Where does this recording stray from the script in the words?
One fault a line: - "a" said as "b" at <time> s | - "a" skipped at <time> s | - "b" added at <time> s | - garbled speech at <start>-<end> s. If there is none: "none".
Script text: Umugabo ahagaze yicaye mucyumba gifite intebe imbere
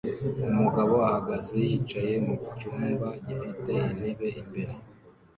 none